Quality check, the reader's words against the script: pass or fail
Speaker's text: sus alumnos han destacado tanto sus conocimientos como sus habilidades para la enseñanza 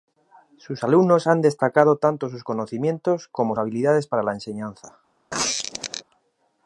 fail